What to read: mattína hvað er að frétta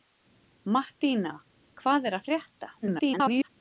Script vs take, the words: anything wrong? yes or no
yes